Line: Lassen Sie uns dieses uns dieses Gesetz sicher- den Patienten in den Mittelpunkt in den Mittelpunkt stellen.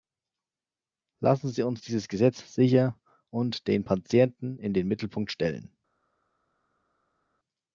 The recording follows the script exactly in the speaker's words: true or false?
false